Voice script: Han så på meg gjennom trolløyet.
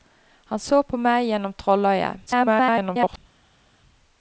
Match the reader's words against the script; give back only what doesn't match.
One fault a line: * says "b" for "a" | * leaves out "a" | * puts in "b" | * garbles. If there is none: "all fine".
* garbles